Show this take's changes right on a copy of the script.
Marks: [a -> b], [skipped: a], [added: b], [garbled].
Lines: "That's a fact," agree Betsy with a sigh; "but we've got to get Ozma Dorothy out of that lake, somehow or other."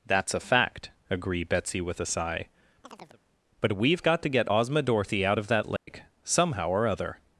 "That's a fact," agree Betsy with a sigh; "but we've got to get Ozma Dorothy out of that lake, somehow or other."